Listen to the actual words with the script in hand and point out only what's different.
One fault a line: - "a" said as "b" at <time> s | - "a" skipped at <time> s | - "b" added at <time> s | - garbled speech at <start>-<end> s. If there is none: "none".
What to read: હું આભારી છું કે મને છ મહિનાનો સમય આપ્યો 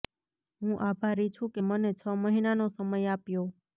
none